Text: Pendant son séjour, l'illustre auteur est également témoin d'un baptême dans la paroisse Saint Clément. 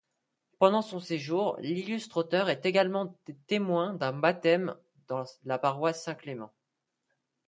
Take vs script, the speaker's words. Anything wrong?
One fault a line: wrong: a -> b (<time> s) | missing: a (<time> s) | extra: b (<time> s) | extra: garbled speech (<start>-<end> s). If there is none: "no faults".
no faults